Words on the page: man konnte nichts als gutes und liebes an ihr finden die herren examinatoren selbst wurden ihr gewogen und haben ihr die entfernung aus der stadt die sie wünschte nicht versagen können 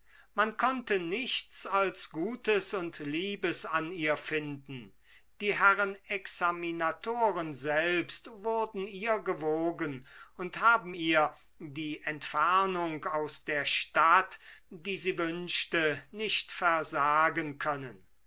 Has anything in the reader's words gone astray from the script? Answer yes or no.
no